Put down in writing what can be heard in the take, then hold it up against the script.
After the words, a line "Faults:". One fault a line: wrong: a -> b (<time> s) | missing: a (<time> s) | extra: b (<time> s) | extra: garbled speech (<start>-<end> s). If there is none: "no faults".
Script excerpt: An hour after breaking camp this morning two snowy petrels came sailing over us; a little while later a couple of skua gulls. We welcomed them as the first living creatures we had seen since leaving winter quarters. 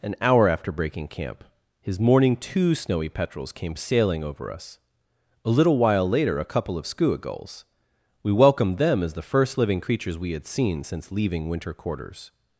An hour after breaking camp his morning two snowy petrels came sailing over us; a little while later a couple of skua gulls. We welcomed them as the first living creatures we had seen since leaving winter quarters.
Faults:
wrong: this -> his (1.8 s)